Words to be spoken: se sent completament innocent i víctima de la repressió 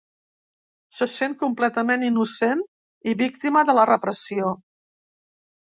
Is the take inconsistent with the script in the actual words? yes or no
no